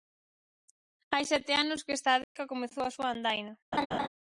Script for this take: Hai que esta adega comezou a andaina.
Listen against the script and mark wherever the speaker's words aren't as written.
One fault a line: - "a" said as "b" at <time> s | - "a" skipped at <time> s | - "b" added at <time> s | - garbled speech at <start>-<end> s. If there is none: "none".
- "sete anos" added at 1.2 s
- "súa" added at 3.0 s